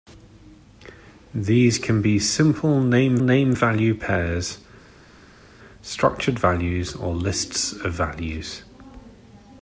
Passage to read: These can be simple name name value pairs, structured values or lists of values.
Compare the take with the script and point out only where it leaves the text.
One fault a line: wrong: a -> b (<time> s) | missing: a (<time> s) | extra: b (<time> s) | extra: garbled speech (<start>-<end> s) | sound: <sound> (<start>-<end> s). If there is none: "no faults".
no faults